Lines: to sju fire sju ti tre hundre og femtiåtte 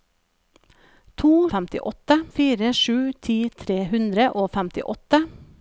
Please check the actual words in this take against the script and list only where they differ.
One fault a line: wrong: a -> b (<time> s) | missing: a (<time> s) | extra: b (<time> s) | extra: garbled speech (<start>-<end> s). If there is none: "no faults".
wrong: sju -> femtiåtte (1.6 s)